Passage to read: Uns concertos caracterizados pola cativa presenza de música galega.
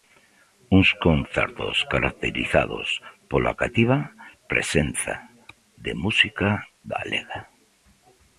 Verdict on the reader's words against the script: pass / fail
pass